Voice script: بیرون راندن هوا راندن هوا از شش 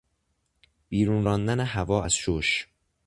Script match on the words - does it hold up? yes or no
no